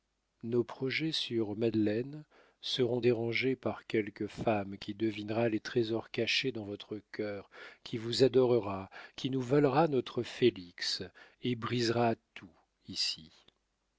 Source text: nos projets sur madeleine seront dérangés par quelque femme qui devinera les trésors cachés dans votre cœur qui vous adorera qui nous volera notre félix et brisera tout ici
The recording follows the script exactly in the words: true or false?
true